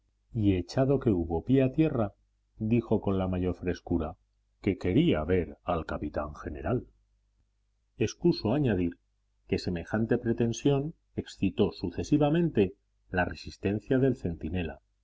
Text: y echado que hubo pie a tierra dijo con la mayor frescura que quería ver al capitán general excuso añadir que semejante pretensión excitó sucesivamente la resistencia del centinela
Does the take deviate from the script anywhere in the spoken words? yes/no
no